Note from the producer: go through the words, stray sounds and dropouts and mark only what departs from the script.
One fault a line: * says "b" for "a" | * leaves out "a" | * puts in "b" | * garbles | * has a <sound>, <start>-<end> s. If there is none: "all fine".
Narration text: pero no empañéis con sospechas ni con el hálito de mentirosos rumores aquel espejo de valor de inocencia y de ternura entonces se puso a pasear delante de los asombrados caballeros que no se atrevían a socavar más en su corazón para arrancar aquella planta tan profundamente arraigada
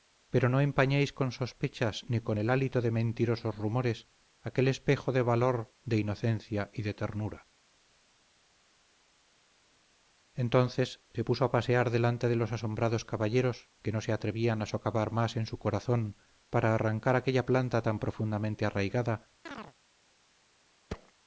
* has a chirp, 19.5-19.7 s
* has a thud, 20.9-21.1 s